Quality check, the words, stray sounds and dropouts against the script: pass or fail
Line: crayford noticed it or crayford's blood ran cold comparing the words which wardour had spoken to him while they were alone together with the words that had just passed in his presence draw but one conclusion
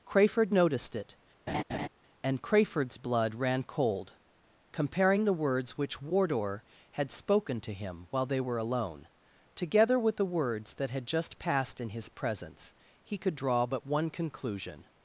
fail